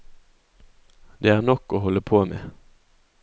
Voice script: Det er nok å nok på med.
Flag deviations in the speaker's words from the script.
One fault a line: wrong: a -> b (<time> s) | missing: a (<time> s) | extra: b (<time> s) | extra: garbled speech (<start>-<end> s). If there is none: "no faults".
wrong: nok -> holde (1.8 s)